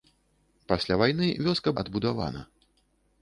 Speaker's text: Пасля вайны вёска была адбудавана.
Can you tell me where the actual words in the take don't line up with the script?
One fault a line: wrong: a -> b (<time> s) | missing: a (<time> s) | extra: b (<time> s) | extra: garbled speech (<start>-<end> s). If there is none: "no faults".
missing: была (1.8 s)